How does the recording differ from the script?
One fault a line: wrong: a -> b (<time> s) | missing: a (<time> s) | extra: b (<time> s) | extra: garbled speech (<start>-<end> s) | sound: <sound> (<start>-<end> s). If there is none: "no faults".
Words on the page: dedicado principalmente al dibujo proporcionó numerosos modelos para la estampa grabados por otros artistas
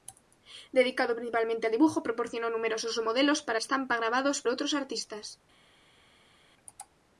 missing: la (3.6 s)
missing: por (4.4 s)